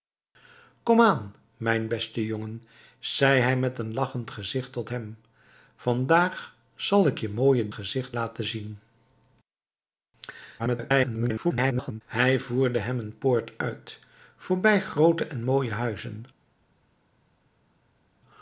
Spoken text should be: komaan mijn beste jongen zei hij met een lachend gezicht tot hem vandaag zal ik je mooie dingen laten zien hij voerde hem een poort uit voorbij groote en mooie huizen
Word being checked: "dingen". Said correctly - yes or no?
no